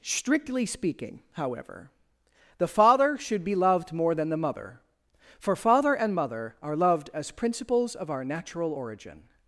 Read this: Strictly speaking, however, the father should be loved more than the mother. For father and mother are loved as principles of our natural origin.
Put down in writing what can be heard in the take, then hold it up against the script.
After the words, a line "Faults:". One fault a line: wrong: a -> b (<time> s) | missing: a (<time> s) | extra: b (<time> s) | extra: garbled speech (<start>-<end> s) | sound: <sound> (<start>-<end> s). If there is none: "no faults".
Strictly speaking, however, the father should be loved more than the mother. For father and mother are loved as principles of our natural origin.
Faults:
no faults